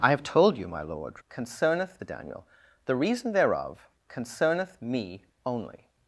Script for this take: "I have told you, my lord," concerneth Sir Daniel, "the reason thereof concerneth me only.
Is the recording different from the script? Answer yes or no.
no